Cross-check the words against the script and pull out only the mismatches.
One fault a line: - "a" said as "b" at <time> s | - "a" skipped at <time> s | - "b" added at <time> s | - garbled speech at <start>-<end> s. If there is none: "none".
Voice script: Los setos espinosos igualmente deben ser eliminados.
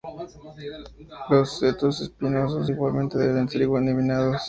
none